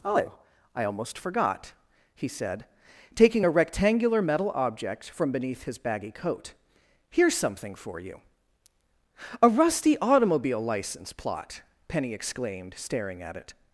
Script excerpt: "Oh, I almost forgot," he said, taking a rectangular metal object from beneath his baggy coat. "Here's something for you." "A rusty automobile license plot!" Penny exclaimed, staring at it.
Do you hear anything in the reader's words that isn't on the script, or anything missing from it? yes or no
no